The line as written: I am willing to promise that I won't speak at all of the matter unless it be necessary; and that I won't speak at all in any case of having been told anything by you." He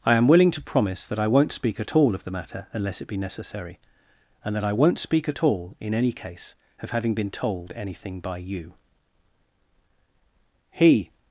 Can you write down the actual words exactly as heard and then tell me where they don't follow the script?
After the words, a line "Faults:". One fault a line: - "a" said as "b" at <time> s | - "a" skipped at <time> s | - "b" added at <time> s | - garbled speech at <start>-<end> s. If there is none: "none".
I am willing to promise that I won't speak at all of the matter unless it be necessary; and that I won't speak at all in any case of having been told anything by you." He
Faults:
none